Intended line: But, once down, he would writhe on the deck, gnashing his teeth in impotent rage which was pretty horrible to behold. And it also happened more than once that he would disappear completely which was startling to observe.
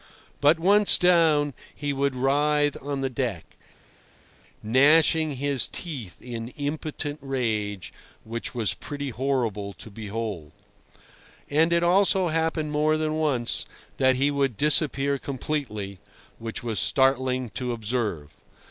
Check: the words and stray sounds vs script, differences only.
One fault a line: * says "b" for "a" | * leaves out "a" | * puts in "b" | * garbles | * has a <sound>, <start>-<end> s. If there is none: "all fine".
all fine